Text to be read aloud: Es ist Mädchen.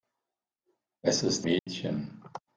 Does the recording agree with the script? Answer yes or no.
yes